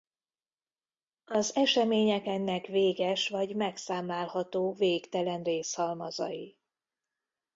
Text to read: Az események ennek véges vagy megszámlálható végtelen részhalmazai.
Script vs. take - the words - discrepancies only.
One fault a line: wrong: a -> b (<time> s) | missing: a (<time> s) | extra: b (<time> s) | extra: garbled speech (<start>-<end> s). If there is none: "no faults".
no faults